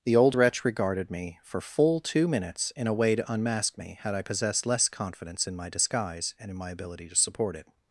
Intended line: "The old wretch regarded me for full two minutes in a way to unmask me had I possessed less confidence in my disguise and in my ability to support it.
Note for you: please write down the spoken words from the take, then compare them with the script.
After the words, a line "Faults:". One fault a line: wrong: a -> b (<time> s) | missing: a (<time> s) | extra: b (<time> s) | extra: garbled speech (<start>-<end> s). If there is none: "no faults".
"The old wretch regarded me for full two minutes in a way to unmask me had I possessed less confidence in my disguise and in my ability to support it.
Faults:
no faults